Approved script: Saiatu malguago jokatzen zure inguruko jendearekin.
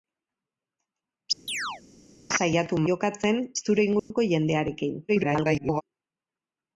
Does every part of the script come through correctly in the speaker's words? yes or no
no